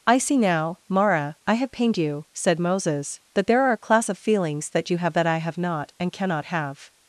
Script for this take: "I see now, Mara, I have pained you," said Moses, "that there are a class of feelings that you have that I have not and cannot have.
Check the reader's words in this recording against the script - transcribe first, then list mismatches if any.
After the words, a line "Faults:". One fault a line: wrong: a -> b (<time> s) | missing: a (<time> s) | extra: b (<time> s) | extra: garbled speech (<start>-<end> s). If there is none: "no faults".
"I see now, Mara, I have pained you," said Moses, "that there are a class of feelings that you have that I have not and cannot have.
Faults:
no faults